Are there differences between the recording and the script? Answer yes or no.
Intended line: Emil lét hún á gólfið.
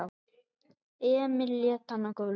yes